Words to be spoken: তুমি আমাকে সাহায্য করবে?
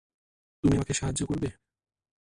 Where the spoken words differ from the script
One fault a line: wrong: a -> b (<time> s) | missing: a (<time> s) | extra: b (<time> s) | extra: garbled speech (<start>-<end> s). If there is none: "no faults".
no faults